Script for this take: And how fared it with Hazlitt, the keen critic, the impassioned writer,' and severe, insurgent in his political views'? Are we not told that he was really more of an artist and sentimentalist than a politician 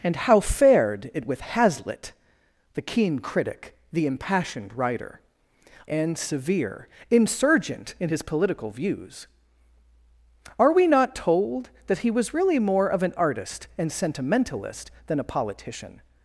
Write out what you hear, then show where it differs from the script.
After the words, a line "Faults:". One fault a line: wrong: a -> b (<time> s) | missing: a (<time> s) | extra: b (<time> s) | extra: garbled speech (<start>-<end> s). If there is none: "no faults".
And how fared it with Hazlitt, the keen critic, the impassioned writer,' and severe, insurgent in his political views'? Are we not told that he was really more of an artist and sentimentalist than a politician
Faults:
no faults